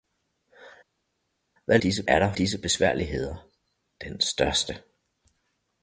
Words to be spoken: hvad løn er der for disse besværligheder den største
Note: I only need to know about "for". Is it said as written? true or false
false